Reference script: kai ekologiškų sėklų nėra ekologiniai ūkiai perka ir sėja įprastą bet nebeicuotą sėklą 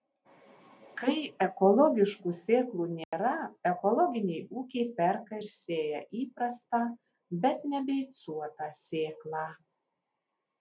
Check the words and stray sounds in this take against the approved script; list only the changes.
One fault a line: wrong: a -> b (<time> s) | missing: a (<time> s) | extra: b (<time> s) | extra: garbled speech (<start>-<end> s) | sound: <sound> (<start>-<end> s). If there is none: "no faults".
sound: dropout (3.0-3.1 s)